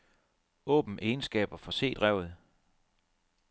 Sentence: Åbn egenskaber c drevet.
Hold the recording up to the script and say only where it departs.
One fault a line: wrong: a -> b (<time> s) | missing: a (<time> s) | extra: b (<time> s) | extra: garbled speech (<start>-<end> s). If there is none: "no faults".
extra: for (1.6 s)